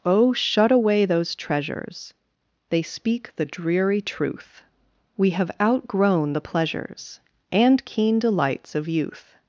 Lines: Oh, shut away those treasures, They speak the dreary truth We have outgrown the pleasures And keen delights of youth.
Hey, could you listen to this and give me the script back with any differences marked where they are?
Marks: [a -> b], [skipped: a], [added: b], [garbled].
Oh, shut away those treasures, They speak the dreary truth We have outgrown the pleasures And keen delights of youth.